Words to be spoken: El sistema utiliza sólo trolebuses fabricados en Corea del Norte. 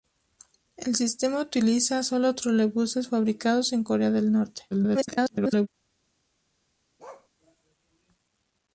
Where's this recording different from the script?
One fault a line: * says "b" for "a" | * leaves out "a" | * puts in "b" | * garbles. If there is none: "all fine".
* garbles